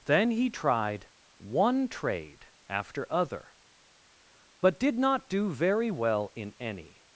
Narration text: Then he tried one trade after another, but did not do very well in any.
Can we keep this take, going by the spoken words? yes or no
no